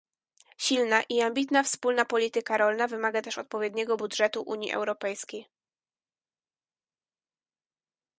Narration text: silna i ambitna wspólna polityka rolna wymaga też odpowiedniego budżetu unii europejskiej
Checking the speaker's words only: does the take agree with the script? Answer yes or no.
yes